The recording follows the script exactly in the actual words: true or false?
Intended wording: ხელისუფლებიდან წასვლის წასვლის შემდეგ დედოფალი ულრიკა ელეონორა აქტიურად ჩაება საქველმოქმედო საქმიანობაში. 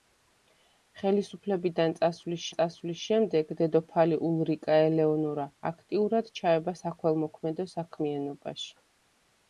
true